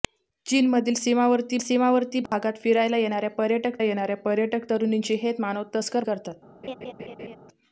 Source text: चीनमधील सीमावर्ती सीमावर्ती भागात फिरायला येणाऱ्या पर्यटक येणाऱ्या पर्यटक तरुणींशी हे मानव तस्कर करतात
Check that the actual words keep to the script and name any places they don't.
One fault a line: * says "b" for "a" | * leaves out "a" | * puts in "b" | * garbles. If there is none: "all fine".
all fine